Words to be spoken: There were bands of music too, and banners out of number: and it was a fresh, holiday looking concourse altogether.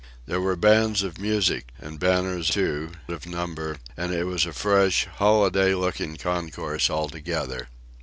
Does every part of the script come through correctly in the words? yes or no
no